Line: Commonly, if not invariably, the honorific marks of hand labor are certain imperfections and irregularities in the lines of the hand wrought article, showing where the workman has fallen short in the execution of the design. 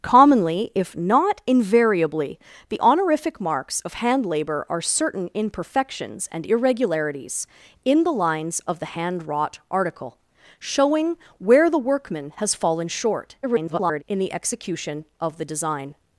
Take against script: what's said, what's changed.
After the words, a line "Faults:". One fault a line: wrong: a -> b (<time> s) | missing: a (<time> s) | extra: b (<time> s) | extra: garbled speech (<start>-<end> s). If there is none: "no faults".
Commonly, if not invariably, the honorific marks of hand labor are certain imperfections and irregularities in the lines of the hand wrought article, showing where the workman has fallen short [garbled] in the execution of the design.
Faults:
extra: garbled speech (13.4-14.0 s)